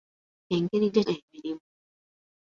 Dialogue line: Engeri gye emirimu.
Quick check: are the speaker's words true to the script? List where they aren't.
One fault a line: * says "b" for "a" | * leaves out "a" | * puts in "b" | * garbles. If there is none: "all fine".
all fine